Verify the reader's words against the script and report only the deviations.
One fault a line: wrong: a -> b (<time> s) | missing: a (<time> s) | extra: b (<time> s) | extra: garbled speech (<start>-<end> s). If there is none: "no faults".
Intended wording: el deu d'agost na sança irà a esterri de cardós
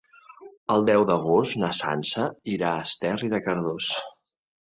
no faults